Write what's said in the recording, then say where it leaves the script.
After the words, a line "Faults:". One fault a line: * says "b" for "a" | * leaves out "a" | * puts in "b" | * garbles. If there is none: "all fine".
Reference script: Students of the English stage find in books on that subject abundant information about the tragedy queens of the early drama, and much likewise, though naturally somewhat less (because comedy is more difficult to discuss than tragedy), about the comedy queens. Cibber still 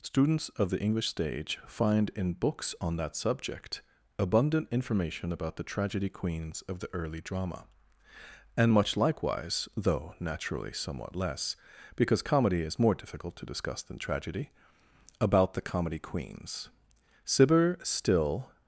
Students of the English stage find in books on that subject abundant information about the tragedy queens of the early drama, and much likewise, though naturally somewhat less (because comedy is more difficult to discuss than tragedy), about the comedy queens. Cibber still
Faults:
all fine